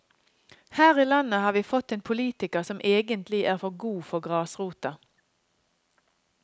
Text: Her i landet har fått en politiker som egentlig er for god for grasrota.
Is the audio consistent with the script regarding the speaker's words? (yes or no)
no